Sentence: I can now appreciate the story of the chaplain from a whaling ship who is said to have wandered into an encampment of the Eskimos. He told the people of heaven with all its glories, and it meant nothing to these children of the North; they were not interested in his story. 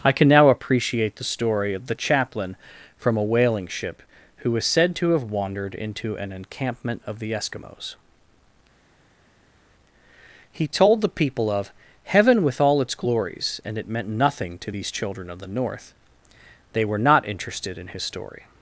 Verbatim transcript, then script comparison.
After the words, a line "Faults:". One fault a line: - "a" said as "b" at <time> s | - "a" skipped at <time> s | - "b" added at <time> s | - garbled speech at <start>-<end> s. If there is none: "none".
I can now appreciate the story of the chaplain from a whaling ship who is said to have wandered into an encampment of the Eskimos. He told the people of heaven with all its glories, and it meant nothing to these children of the North; they were not interested in his story.
Faults:
none